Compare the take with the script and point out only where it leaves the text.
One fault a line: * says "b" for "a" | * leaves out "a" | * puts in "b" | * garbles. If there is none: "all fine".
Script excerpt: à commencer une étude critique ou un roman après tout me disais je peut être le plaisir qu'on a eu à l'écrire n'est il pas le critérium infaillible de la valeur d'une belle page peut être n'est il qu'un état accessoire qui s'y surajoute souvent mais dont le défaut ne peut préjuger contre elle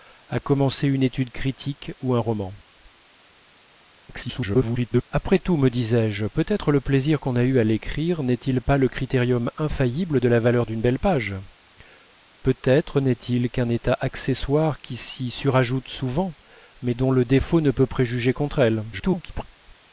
* garbles
* garbles